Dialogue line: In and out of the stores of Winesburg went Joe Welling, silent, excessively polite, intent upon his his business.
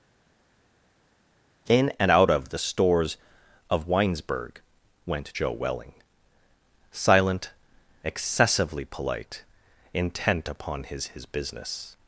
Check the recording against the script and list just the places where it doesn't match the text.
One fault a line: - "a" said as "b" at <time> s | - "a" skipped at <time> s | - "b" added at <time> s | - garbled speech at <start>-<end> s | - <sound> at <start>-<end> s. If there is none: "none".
none